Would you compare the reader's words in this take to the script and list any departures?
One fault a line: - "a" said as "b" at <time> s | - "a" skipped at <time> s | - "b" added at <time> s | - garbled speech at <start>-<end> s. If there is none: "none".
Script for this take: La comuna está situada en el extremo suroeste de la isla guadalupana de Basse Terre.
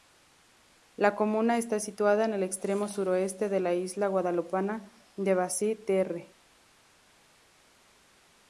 none